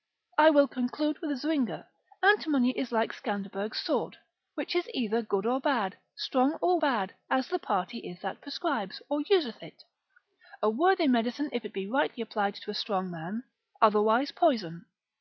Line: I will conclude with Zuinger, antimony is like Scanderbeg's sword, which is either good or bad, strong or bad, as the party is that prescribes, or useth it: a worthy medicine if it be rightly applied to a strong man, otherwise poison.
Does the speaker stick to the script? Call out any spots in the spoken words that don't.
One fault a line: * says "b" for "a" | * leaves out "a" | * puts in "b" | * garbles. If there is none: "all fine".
all fine